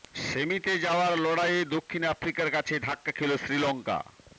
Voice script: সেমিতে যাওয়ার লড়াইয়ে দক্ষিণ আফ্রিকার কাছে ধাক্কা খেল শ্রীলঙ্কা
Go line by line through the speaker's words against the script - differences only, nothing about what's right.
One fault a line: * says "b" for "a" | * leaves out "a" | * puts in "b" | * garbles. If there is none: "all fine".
all fine